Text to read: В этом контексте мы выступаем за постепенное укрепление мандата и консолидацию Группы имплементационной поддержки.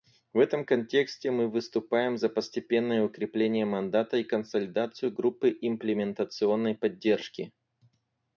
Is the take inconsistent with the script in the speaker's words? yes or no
no